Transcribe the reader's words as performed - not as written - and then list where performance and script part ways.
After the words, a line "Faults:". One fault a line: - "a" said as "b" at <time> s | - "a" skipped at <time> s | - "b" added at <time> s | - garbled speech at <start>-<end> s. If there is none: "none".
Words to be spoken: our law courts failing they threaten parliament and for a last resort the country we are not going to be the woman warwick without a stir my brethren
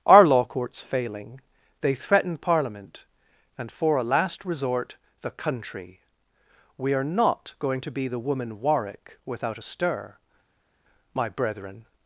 our law courts failing they threaten parliament and for a last resort the country we are not going to be the woman warwick without a stir my brethren
Faults:
none